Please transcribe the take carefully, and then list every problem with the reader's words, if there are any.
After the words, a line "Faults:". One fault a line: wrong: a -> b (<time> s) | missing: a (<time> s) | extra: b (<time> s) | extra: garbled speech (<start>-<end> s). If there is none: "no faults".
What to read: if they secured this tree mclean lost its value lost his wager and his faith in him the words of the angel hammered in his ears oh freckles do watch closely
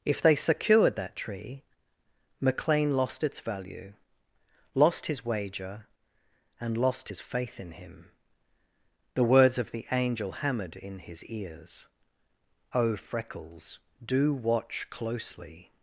if they secured that tree mclean lost its value lost his wager and lost his faith in him the words of the angel hammered in his ears oh freckles do watch closely
Faults:
wrong: this -> that (0.9 s)
extra: lost (6.8 s)